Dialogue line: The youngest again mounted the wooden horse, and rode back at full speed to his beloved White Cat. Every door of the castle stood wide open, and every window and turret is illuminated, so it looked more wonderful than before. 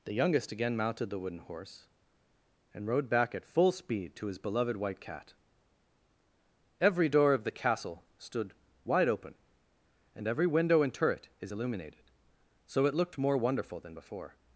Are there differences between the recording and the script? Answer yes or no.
no